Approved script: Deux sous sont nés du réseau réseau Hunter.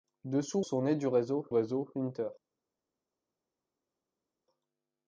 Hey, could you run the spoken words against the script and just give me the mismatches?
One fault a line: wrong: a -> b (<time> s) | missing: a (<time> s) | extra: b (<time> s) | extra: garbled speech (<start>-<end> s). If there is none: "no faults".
no faults